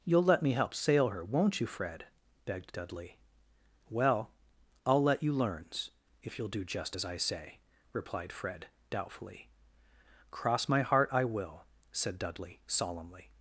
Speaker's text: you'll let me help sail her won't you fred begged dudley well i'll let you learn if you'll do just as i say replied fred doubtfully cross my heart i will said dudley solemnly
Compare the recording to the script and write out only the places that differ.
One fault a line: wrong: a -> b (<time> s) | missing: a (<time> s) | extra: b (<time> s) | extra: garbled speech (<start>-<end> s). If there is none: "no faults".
wrong: learn -> learns (5.3 s)